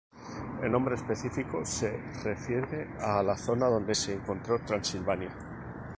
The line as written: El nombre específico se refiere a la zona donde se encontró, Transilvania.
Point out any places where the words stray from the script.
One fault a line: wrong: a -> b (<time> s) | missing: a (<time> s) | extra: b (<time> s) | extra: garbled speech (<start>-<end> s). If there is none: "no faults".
no faults